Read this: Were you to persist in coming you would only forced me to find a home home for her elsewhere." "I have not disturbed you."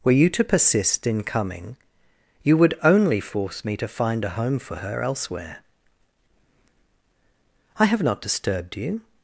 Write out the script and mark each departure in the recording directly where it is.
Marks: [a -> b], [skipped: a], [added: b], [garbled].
Were you to persist in coming you would only [forced -> force] me to find a home [skipped: home] for her elsewhere." "I have not disturbed you."